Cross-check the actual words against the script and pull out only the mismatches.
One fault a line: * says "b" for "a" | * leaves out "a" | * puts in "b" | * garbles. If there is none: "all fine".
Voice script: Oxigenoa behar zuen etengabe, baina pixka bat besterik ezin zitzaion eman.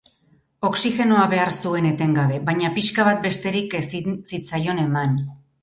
all fine